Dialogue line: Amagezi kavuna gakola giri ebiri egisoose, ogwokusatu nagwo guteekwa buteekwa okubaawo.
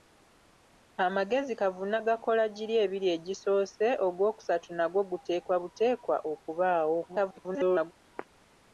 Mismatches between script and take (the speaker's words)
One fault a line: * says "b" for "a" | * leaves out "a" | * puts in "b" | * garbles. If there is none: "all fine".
* garbles